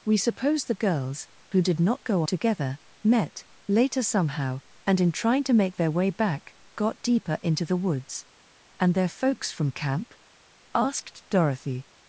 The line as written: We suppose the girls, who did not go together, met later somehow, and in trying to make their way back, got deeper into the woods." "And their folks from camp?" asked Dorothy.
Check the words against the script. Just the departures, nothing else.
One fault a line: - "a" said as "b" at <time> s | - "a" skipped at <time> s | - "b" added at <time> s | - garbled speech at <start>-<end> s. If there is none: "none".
none